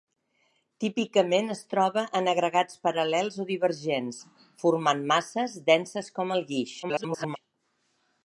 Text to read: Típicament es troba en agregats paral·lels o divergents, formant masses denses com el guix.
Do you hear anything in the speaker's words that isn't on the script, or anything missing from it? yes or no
yes